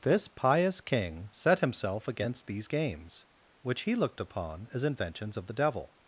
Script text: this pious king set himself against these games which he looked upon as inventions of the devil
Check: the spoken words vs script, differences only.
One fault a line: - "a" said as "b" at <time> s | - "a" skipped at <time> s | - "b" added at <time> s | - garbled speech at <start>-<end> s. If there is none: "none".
none